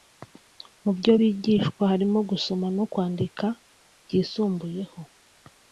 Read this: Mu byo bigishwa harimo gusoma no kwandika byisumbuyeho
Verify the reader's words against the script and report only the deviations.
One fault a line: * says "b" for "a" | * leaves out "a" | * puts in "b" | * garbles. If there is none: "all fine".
all fine